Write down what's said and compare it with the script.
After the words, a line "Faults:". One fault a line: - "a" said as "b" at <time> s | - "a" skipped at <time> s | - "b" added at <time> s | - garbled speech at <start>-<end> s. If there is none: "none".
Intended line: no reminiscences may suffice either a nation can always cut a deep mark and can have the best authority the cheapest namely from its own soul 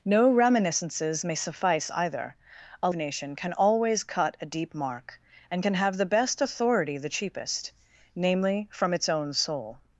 no reminiscences may suffice either a nation can always cut a deep mark and can have the best authority the cheapest namely from its own soul
Faults:
none